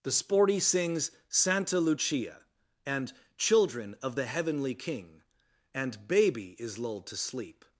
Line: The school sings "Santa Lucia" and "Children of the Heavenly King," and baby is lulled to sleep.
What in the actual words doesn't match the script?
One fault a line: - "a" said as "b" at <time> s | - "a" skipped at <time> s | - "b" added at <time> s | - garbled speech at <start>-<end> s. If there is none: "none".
- "school" said as "sporty" at 0.1 s